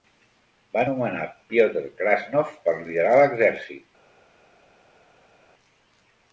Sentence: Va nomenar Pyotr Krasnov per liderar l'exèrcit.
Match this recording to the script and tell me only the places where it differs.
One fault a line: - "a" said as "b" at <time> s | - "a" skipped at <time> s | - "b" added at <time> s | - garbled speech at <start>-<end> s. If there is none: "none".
none